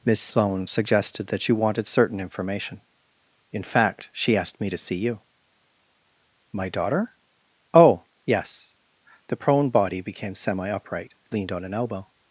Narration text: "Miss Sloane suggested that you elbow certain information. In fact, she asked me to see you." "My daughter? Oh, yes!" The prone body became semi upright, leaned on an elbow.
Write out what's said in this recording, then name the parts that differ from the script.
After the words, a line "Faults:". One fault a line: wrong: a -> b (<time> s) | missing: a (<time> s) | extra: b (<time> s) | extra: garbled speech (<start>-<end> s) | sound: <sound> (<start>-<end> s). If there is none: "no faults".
"Miss Sloane suggested that you wanted certain information. In fact, she asked me to see you." "My daughter? Oh, yes!" The prone body became semi upright, leaned on an elbow.
Faults:
wrong: elbow -> wanted (1.6 s)